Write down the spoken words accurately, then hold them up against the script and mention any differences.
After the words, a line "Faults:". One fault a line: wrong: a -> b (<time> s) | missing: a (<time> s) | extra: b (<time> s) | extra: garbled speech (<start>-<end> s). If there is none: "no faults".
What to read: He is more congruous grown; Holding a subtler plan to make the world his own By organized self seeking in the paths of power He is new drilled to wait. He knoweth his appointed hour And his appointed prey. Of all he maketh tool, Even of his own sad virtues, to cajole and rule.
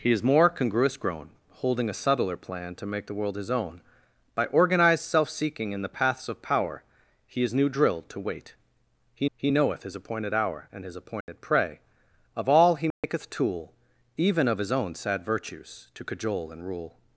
He is more congruous grown; Holding a subtler plan to make the world his own By organized self seeking in the paths of power He is new drilled to wait. He he knoweth his appointed hour And his appointed prey. Of all he maketh tool, Even of his own sad virtues, to cajole and rule.
Faults:
extra: he (9.4 s)